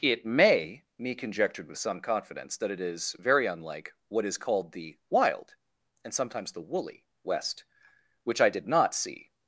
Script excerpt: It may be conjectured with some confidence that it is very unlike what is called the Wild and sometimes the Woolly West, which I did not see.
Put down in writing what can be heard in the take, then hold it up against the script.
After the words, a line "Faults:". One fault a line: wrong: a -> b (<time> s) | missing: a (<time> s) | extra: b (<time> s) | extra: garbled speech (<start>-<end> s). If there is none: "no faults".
It may me conjectured with some confidence that it is very unlike what is called the Wild and sometimes the Woolly West, which I did not see.
Faults:
wrong: be -> me (1.0 s)